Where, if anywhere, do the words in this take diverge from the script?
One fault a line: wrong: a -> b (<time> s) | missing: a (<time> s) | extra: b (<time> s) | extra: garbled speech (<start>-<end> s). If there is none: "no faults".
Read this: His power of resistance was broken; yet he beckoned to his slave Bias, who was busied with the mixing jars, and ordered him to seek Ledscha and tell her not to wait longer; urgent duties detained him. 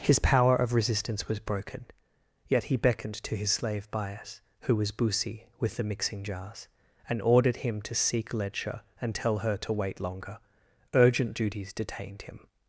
wrong: busied -> busi (4.9 s)
missing: not (9.6 s)